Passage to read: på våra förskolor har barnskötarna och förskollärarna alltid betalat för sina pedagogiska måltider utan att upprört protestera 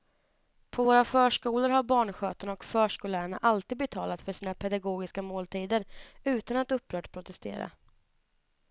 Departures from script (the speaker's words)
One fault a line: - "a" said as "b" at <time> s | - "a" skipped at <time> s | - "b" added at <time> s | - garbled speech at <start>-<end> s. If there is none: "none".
none